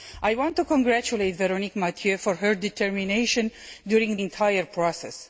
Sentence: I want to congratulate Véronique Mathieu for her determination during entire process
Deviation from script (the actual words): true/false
false